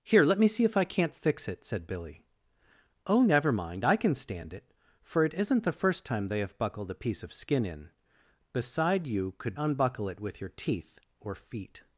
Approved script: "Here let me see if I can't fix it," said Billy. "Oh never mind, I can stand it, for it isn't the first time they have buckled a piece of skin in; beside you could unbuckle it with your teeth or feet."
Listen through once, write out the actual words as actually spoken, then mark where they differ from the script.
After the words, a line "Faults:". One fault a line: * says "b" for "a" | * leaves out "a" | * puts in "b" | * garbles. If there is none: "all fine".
"Here let me see if I can't fix it," said Billy. "Oh never mind, I can stand it, for it isn't the first time they have buckled a piece of skin in; beside you could unbuckle it with your teeth or feet."
Faults:
all fine